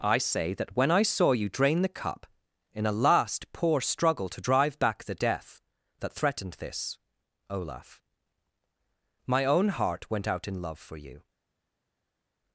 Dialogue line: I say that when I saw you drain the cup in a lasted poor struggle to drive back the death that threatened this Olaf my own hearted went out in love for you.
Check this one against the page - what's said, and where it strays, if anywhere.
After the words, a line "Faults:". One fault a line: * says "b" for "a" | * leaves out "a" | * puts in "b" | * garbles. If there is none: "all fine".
I say that when I saw you drain the cup in a last poor struggle to drive back the death that threatened this Olaf my own heart went out in love for you.
Faults:
* says "last" for "lasted"
* says "heart" for "hearted"